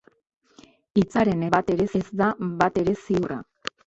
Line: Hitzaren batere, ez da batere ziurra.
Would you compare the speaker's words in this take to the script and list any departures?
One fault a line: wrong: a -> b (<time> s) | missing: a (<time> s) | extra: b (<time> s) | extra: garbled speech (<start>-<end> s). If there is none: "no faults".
no faults